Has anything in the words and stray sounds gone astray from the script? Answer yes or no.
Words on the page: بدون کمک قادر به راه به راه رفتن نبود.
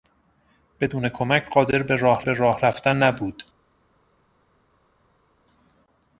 no